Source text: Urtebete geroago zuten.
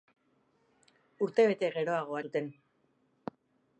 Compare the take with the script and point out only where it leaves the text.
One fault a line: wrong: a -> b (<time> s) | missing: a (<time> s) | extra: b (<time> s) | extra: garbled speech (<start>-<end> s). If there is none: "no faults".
no faults